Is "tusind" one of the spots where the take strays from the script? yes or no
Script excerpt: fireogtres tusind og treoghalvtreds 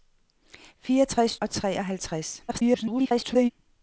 yes